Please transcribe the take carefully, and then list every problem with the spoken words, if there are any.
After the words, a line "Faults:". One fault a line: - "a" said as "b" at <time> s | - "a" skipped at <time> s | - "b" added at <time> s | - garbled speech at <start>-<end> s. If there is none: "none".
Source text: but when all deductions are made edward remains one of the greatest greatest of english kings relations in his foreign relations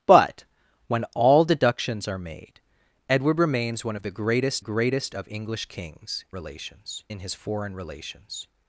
but when all deductions are made edward remains one of the greatest greatest of english kings relations in his foreign relations
Faults:
none